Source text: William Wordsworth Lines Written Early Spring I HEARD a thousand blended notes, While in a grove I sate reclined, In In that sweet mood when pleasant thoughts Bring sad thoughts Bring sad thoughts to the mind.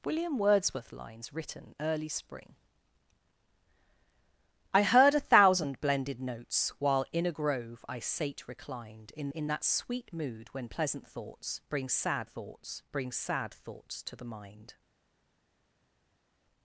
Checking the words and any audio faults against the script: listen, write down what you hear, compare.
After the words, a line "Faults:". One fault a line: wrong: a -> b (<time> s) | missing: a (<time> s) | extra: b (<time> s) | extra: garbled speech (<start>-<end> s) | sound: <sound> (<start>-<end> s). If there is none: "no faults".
William Wordsworth Lines Written Early Spring I HEARD a thousand blended notes, While in a grove I sate reclined, In In that sweet mood when pleasant thoughts Bring sad thoughts Bring sad thoughts to the mind.
Faults:
no faults